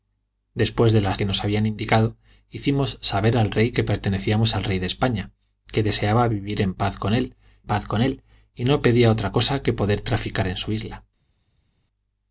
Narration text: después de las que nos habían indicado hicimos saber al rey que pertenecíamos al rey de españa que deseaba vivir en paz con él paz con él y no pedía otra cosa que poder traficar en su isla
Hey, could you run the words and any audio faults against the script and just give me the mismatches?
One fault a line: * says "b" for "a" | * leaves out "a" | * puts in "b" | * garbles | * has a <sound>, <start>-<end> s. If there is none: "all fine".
all fine